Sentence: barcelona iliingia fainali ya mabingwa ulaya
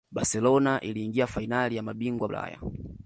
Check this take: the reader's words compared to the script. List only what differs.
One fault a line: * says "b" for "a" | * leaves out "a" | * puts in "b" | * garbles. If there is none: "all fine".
all fine